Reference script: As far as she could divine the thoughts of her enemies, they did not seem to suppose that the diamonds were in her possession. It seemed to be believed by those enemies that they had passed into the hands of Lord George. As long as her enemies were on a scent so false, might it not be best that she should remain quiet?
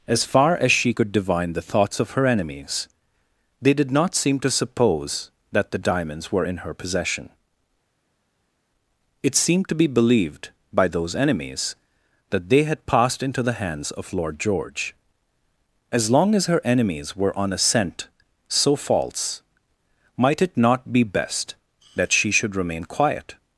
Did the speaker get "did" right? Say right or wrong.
right